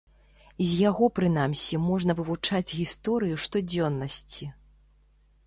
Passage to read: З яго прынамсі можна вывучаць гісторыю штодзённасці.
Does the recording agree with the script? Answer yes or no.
yes